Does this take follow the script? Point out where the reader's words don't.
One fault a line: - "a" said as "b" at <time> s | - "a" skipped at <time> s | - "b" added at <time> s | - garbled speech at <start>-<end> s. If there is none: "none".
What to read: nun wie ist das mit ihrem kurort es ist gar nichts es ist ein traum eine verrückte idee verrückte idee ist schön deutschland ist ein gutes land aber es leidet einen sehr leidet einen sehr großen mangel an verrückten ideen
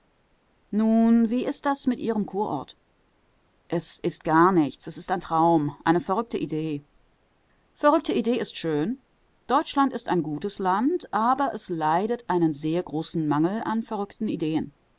- "leidet einen sehr" skipped at 12.8 s